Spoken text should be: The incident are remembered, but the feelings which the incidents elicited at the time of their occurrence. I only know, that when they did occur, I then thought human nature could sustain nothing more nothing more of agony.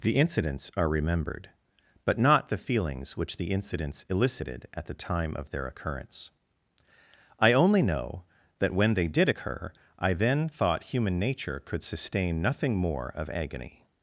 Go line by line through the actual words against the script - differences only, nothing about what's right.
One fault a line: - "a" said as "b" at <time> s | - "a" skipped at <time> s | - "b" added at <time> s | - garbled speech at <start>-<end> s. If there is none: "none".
- "incident" said as "incidents" at 0.1 s
- "not" added at 2.2 s
- "nothing more" skipped at 13.1 s